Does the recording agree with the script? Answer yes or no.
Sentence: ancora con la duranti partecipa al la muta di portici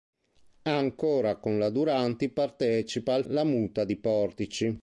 yes